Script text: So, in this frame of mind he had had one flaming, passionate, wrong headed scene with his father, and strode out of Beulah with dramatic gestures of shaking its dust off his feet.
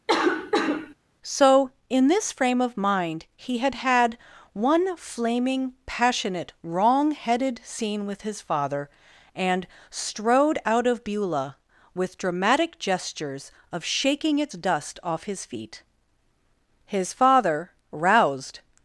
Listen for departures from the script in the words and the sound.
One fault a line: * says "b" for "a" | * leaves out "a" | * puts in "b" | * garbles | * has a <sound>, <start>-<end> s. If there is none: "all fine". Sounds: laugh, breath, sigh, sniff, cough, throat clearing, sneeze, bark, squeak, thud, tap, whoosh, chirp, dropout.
* has a cough, 0.1-0.9 s
* puts in "His father roused"